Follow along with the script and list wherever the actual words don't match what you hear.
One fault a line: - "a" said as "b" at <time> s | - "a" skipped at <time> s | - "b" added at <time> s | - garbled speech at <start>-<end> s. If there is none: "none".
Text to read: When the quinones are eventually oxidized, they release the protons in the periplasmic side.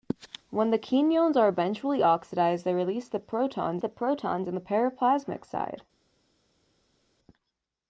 - "the protons" added at 3.8 s